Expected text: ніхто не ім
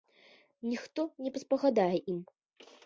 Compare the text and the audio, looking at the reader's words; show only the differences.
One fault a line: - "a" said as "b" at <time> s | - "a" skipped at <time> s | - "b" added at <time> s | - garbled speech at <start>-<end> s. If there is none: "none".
- "паспагадае" added at 1.3 s